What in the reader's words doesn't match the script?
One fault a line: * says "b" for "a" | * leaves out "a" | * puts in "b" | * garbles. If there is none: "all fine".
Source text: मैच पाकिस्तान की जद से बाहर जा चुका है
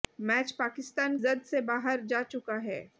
* leaves out "की"